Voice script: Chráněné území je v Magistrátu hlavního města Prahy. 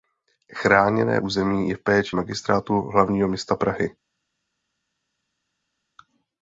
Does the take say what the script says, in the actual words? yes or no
no